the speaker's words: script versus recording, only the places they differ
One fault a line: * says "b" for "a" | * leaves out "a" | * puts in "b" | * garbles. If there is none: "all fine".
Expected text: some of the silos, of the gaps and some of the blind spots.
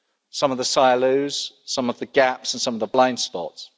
* puts in "some"